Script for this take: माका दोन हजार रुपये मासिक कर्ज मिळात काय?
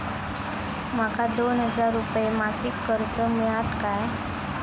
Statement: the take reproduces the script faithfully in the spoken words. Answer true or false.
true